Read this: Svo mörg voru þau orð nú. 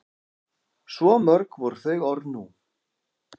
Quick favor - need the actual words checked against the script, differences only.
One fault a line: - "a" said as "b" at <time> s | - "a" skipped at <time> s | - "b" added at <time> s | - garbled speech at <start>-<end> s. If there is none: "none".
none